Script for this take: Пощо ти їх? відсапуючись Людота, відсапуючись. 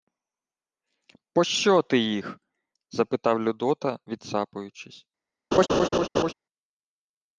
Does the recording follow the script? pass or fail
fail